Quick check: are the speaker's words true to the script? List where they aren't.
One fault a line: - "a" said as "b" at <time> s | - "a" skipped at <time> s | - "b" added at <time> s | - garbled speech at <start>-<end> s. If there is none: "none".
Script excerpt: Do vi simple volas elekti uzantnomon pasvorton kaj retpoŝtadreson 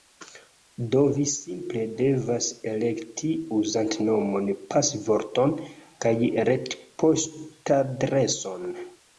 - "volas" said as "devas" at 2.0 s